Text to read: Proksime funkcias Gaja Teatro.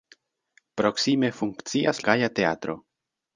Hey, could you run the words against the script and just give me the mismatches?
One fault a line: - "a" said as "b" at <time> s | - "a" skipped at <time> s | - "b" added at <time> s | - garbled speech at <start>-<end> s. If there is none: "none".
none